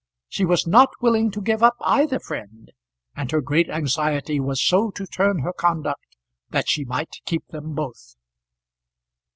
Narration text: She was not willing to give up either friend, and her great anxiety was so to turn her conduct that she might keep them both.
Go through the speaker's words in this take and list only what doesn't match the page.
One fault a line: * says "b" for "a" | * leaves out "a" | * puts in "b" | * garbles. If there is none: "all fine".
all fine